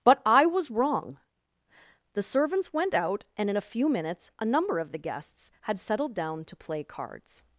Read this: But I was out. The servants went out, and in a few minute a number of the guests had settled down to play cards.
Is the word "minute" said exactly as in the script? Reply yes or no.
no